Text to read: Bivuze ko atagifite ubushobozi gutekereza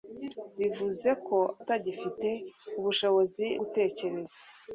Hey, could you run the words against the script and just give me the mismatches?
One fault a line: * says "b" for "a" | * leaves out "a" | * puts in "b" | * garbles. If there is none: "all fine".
all fine